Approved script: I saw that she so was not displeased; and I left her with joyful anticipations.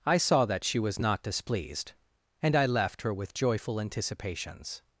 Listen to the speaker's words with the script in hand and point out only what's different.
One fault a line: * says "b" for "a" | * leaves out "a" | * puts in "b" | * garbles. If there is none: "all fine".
* leaves out "so"